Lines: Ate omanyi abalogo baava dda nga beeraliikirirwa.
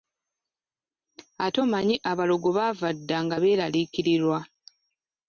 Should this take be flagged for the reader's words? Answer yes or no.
no